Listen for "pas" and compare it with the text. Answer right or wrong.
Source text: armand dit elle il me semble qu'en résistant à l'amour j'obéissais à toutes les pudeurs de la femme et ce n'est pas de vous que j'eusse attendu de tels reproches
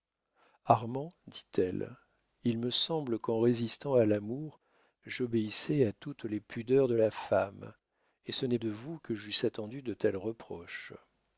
wrong